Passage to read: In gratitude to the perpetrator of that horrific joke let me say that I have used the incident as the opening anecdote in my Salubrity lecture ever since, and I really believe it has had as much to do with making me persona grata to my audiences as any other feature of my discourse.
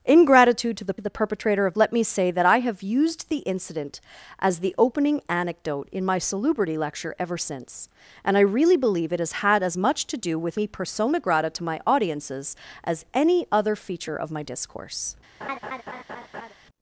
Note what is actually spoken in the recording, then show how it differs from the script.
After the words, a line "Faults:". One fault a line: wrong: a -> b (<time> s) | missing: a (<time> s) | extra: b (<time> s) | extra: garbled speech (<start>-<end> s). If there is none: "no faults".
In gratitude to the the perpetrator of let me say that I have used the incident as the opening anecdote in my Salubrity lecture ever since, and I really believe it has had as much to do with me persona grata to my audiences as any other feature of my discourse.
Faults:
extra: the (1.0 s)
missing: that horrific joke (1.7 s)
missing: making (10.6 s)